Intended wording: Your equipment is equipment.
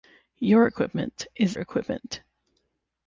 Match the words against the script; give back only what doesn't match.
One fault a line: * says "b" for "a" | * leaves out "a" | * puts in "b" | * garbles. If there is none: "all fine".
all fine